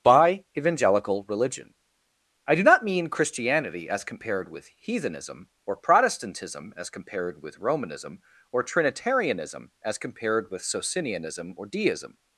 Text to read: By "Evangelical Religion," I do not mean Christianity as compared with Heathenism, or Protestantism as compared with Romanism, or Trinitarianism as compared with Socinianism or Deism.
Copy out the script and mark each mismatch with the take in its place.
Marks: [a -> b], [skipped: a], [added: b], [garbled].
By "Evangelical Religion," I do not mean Christianity as compared with Heathenism, or Protestantism as compared with Romanism, or Trinitarianism as compared with Socinianism or Deism.